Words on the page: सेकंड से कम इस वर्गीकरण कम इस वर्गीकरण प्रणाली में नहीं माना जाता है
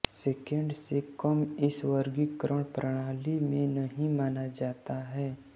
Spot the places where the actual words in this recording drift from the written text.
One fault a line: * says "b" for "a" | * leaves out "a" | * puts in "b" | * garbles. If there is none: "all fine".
* leaves out "कम इस वर्गीकरण"